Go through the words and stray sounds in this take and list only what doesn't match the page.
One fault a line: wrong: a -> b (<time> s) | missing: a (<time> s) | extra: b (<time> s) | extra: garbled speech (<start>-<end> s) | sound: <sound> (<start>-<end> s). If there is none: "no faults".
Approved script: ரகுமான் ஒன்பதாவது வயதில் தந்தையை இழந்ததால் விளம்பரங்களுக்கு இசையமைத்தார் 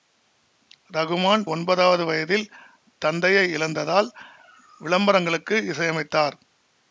no faults